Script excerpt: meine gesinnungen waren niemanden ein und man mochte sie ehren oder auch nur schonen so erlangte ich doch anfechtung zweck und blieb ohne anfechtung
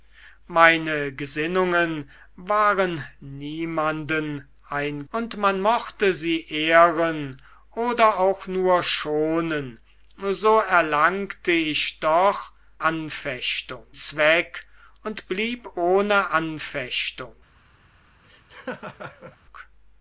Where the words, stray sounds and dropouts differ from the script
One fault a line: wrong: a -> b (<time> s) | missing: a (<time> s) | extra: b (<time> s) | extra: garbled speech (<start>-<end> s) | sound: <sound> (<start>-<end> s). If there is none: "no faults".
sound: laugh (18.2-19.4 s)